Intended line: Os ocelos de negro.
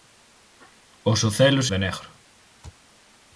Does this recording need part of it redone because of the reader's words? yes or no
no